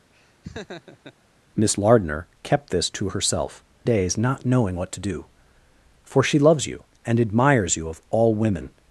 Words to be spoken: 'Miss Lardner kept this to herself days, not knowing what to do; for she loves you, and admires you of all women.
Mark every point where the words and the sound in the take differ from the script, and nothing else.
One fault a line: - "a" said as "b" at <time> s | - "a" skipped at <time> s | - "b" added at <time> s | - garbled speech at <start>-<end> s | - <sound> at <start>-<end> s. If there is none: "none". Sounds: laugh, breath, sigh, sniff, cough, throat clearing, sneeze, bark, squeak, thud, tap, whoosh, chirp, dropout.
- laugh at 0.1-1.1 s